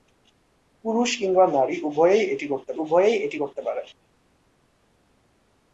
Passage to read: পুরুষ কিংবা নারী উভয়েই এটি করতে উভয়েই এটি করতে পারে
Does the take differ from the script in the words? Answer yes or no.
no